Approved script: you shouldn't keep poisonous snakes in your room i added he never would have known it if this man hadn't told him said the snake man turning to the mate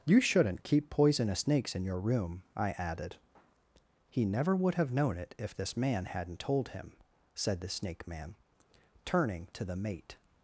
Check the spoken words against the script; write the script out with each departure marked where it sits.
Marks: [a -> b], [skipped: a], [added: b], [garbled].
you shouldn't keep poisonous snakes in your room i added he never would have known it if this man hadn't told him said the snake man turning to the mate